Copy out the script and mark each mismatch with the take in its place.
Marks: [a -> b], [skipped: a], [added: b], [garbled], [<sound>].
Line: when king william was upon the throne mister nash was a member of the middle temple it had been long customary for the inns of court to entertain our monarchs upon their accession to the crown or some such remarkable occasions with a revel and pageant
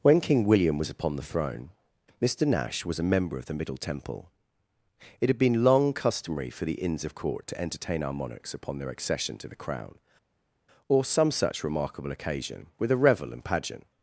when king william was upon the throne mister nash was a member of the middle temple it had been long customary for the inns of court to entertain our monarchs upon their accession to the crown or some such remarkable [occasions -> occasion] with a revel and pageant